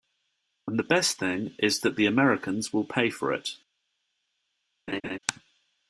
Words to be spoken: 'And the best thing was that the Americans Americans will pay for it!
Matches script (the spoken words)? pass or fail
fail